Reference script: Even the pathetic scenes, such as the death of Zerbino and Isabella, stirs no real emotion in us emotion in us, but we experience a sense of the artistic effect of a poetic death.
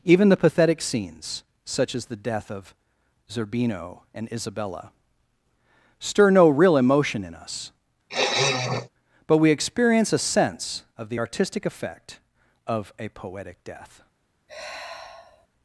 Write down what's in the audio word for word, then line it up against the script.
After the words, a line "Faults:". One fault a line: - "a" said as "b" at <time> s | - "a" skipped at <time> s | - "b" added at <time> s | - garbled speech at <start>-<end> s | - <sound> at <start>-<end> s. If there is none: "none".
Even the pathetic scenes, such as the death of Zerbino and Isabella, stir no real emotion in us, but we experience a sense of the artistic effect of a poetic death.
Faults:
- "stirs" said as "stir" at 6.0 s
- "emotion in us" skipped at 7.7 s
- sniff at 8.1-8.9 s
- sigh at 14.5-15.5 s